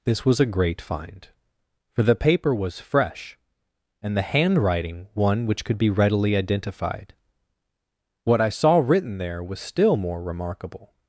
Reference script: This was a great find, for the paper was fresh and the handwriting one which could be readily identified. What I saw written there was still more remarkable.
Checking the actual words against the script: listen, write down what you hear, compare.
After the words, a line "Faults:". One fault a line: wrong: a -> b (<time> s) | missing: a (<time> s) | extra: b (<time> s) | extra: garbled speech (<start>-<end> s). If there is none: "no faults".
This was a great find, for the paper was fresh and the handwriting one which could be readily identified. What I saw written there was still more remarkable.
Faults:
no faults